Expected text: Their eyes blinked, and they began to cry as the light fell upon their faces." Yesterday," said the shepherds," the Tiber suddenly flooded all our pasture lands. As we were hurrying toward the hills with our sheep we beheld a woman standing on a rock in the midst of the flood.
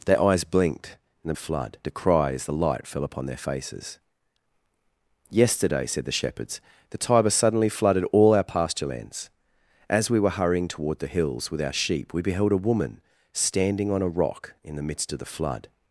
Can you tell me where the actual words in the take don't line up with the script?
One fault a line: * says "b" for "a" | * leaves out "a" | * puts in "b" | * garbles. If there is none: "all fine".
* says "flood" for "began"